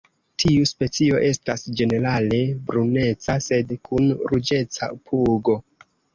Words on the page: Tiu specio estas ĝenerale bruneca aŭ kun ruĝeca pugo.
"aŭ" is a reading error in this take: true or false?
true